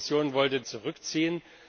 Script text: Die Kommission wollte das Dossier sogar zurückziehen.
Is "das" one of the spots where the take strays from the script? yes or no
yes